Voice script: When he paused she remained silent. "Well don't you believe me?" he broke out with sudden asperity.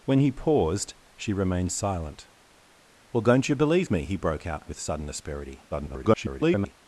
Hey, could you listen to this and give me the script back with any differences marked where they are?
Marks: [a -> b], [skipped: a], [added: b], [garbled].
When he paused she remained silent. "Well don't you believe me?" he broke out with sudden asperity. [garbled]